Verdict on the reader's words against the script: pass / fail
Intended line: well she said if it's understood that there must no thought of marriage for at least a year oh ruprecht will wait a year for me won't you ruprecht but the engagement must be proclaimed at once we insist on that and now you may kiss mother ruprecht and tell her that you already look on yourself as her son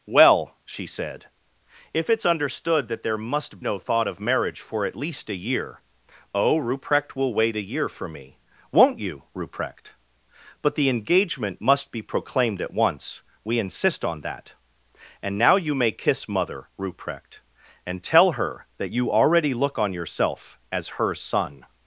pass